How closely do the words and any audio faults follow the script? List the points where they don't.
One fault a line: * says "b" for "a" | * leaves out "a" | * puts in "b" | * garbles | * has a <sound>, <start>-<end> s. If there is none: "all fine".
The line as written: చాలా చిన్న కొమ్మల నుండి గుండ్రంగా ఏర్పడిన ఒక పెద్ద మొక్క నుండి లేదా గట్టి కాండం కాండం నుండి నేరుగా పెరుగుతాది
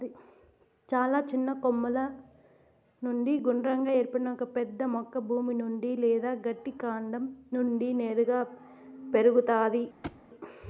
* puts in "భూమి"
* leaves out "కాండం"
* has a thud, 10.0-10.2 s